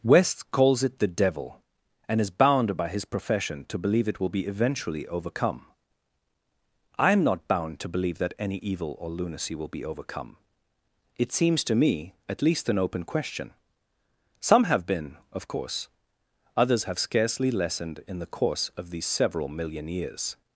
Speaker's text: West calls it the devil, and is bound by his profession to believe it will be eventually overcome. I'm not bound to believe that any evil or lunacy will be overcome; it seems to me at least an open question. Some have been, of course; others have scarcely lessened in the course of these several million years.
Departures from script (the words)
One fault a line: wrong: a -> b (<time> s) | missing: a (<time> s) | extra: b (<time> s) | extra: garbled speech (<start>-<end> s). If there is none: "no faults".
no faults